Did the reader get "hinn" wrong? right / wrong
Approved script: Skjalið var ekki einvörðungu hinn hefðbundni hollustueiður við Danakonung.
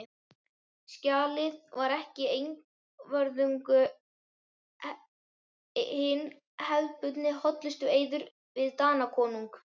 right